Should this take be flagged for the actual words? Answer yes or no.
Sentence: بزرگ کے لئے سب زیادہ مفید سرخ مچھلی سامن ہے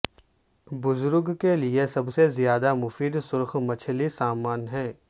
yes